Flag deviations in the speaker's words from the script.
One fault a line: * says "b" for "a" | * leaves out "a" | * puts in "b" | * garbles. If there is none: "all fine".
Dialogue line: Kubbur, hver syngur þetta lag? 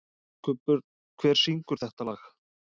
all fine